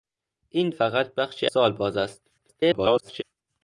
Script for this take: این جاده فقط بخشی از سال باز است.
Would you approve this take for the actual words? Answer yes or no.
no